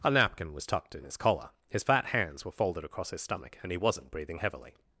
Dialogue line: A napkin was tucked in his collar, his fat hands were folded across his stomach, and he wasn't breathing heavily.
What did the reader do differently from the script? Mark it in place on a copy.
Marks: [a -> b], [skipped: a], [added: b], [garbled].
A napkin was tucked in his collar, his fat hands were folded across his stomach, and he wasn't breathing heavily.